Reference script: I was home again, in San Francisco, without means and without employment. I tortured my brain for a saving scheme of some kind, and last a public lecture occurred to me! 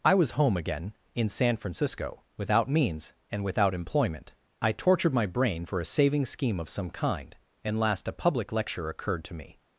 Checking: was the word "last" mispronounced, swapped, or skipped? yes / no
no